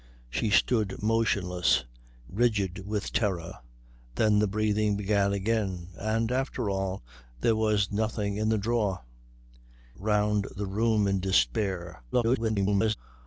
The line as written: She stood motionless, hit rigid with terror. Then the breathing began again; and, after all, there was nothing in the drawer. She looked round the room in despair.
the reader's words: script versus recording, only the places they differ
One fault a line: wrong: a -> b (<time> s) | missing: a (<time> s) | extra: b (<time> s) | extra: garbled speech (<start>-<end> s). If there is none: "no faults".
missing: hit (1.9 s)
missing: She looked (9.0 s)
extra: garbled speech (12.1-13.0 s)